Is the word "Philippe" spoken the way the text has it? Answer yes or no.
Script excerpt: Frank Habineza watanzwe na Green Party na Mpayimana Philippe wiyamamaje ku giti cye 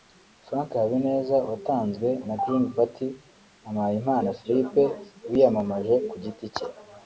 yes